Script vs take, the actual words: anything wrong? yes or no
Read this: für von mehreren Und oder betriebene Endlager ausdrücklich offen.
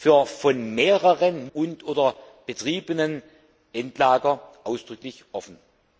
no